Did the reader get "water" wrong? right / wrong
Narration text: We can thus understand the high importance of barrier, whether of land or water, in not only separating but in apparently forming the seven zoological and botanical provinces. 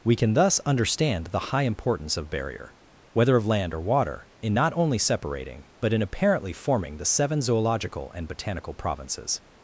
right